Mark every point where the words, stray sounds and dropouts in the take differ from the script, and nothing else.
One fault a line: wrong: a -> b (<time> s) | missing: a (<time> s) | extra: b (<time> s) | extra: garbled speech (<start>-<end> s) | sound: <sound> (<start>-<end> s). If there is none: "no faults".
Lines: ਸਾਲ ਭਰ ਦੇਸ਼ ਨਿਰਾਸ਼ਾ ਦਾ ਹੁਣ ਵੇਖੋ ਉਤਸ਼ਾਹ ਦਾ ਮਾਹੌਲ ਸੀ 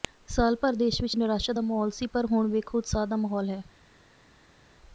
extra: ਵਿਚ (1.0 s)
extra: ਮਾਹੌਲ ਸੀ ਪਰ (1.6 s)
wrong: ਸੀ -> ਹੈ (3.5 s)